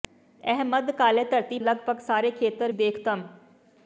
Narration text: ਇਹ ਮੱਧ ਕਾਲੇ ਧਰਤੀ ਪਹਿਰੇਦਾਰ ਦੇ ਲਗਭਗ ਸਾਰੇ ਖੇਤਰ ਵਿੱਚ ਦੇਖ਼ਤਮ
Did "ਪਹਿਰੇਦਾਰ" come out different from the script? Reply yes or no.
yes